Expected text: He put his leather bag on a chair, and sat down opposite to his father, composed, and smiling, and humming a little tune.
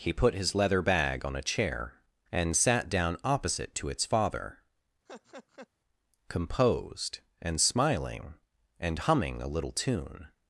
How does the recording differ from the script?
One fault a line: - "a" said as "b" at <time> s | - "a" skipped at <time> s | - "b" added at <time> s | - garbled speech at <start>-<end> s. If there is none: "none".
- "his" said as "its" at 3.9 s